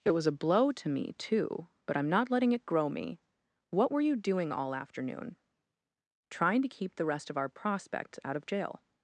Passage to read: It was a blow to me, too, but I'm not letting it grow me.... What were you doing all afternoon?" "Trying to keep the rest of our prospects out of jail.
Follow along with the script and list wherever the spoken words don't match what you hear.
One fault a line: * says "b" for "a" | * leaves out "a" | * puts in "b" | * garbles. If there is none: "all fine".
all fine